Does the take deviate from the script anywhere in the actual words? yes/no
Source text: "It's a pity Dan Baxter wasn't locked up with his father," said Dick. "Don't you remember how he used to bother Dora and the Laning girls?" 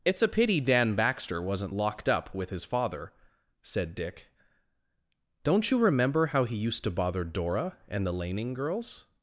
no